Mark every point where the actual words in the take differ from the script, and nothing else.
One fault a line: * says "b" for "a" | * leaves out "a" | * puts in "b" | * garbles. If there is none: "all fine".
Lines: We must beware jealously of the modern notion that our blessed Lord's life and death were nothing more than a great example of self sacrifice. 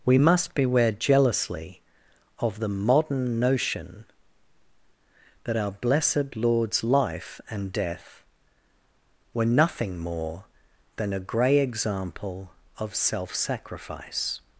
* says "grey" for "great"